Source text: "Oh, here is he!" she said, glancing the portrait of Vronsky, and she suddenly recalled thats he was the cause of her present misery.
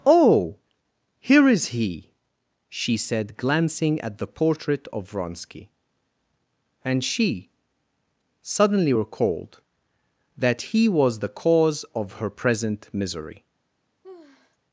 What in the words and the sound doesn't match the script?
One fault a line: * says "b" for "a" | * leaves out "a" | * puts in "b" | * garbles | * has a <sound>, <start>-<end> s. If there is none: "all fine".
* puts in "at"
* says "that" for "thats"
* has a sigh, 14.0-14.6 s